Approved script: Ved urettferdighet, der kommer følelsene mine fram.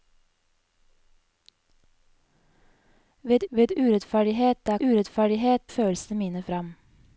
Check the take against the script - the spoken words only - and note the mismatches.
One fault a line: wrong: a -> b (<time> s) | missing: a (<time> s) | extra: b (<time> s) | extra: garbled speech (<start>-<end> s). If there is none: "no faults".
extra: ved (3.5 s)
wrong: kommer -> urettferdighet (4.8 s)